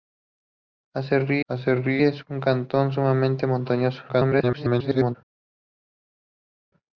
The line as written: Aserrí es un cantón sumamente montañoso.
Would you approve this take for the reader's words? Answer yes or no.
no